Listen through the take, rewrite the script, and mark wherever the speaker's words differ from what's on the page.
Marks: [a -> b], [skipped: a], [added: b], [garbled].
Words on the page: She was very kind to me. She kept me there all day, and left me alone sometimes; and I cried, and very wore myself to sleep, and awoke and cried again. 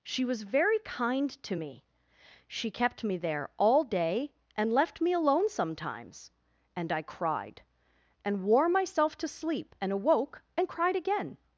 She was very kind to me. She kept me there all day, and left me alone sometimes; and I cried, and [skipped: very] wore myself to sleep, and awoke and cried again.